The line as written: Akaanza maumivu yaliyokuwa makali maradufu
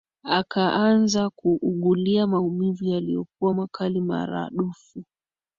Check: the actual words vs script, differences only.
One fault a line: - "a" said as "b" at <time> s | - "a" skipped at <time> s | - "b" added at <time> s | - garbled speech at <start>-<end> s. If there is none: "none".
- "kuugulia" added at 1.3 s